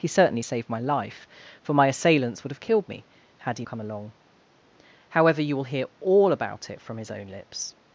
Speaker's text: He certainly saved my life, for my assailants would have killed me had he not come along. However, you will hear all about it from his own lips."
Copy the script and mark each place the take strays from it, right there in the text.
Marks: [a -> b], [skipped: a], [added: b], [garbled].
He certainly saved my life, for my assailants would have killed me had he [skipped: not] come along. However, you will hear all about it from his own lips."